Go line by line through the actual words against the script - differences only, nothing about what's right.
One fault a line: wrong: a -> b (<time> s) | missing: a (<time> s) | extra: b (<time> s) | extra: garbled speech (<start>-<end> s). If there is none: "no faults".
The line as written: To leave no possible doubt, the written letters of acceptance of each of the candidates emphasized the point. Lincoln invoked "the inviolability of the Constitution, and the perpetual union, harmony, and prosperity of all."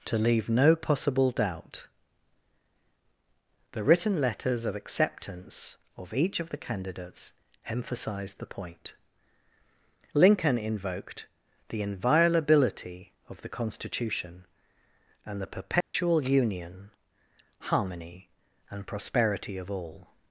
no faults